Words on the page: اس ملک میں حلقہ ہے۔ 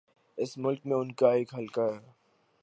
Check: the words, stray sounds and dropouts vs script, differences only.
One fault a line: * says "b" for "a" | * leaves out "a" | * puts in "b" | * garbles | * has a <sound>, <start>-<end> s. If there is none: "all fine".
* puts in "ان کا ایک"